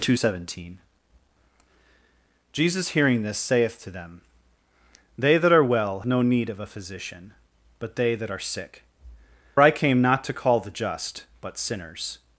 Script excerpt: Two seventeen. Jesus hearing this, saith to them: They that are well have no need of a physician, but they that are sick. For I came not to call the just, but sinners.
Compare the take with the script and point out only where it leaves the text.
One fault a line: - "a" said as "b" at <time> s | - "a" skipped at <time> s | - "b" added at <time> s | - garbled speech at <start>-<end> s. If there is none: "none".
- "have" skipped at 6.0 s
- "For" skipped at 8.8 s